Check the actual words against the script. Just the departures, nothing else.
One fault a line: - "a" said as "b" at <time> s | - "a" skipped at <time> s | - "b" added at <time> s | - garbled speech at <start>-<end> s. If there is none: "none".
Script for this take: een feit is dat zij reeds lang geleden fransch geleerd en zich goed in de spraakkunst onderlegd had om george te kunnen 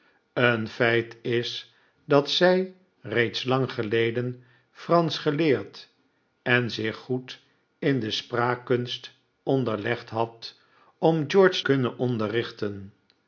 - "te" skipped at 11.6 s